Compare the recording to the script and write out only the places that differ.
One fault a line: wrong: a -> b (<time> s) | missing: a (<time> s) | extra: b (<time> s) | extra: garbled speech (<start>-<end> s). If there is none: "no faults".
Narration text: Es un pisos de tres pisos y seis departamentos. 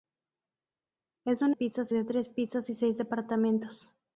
no faults